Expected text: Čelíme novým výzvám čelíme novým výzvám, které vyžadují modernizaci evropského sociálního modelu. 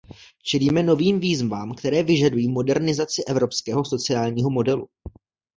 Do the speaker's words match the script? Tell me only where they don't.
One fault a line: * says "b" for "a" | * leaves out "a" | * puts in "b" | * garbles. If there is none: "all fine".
* leaves out "čelíme novým výzvám"